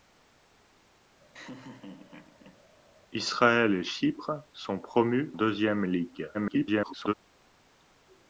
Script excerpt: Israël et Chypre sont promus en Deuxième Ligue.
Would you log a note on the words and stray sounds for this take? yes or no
yes